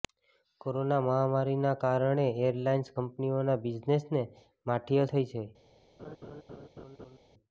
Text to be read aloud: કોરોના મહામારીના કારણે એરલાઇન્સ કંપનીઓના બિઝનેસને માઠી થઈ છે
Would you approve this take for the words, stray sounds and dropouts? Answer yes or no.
no